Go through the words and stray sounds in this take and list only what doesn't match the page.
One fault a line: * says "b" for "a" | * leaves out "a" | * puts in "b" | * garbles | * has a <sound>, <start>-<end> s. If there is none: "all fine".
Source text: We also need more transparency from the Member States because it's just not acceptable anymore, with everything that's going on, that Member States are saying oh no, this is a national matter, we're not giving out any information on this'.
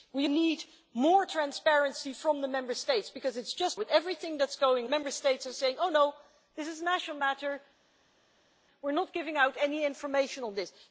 * leaves out "also"
* leaves out "not acceptable anymore"
* leaves out "on that"